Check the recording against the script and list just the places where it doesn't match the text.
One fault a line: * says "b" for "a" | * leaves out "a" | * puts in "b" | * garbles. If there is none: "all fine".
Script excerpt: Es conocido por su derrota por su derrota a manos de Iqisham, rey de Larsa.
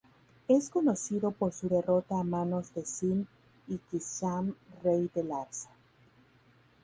* leaves out "por su derrota"
* puts in "Sin"